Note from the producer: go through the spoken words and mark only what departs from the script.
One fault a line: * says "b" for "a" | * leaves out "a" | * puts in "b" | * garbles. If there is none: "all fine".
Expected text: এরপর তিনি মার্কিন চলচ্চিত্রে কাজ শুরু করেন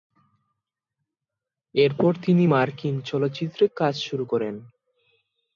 all fine